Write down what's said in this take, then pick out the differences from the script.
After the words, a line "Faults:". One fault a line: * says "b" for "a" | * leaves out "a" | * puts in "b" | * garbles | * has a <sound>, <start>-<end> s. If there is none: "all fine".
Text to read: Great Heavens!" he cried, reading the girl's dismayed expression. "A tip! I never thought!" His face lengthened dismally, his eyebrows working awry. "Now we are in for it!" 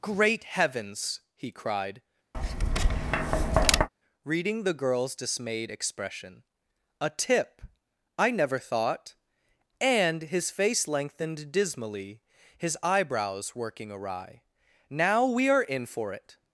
Great Heavens!" he cried, reading the girl's dismayed expression. "A tip! I never thought!" and His face lengthened dismally, his eyebrows working awry. "Now we are in for it!"
Faults:
* has a tap, 2.3-3.9 s
* puts in "and"